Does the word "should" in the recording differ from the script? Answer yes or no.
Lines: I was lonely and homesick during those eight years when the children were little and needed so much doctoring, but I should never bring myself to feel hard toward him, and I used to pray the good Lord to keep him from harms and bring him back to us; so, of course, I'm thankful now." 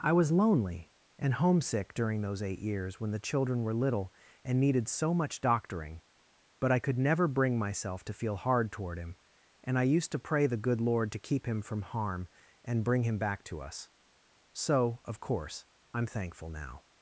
yes